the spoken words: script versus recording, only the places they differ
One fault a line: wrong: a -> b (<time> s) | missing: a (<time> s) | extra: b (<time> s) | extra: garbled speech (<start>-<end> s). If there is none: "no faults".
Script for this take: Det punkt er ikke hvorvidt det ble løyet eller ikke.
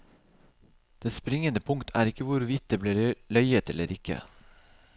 extra: springende (1.1 s)